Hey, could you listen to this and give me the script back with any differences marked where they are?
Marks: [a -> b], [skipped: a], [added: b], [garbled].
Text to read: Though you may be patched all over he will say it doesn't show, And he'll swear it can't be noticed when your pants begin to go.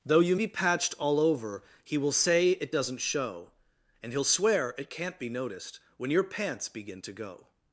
Though you [skipped: may] be patched all over he will say it doesn't show, And he'll swear it can't be noticed when your pants begin to go.